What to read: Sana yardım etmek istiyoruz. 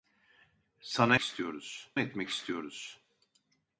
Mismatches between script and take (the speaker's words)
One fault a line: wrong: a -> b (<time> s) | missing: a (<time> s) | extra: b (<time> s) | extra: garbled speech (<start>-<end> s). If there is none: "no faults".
wrong: yardım -> istiyoruz (1.2 s)